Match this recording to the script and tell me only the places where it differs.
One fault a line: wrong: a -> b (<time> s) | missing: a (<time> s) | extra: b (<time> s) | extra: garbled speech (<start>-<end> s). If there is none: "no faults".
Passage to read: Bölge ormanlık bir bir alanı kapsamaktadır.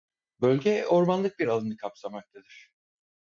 missing: bir (1.5 s)